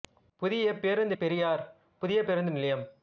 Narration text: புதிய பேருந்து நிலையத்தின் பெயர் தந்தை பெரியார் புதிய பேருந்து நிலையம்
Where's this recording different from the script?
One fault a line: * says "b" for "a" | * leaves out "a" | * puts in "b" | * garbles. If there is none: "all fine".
* leaves out "நிலையத்தின் பெயர் தந்தை"